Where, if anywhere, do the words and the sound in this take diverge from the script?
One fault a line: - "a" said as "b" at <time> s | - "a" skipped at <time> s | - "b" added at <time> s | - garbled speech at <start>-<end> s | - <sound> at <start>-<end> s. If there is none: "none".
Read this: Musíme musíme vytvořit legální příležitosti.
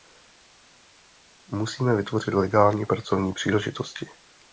- "musíme" skipped at 2.0 s
- "pracovní" added at 2.9 s